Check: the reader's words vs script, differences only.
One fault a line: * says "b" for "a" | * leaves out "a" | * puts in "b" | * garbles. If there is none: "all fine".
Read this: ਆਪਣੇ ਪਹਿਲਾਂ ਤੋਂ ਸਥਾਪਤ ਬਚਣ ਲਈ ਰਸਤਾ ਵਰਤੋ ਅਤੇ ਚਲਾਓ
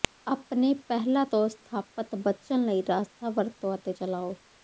all fine